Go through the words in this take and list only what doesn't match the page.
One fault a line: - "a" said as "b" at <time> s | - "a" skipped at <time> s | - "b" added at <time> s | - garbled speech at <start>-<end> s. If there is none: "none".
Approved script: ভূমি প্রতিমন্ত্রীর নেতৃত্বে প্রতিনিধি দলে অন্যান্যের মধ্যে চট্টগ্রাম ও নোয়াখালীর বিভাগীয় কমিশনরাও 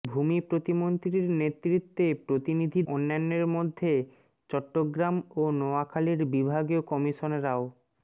- "দলে" skipped at 2.8 s